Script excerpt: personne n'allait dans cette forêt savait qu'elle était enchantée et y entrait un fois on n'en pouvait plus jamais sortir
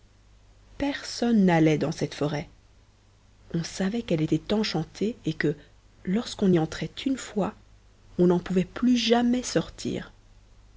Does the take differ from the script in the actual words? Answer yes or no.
yes